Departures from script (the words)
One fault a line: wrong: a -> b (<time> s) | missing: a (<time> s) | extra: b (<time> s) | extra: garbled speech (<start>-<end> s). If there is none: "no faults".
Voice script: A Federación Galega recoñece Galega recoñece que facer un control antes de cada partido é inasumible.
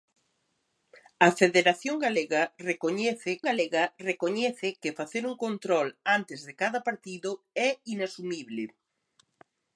no faults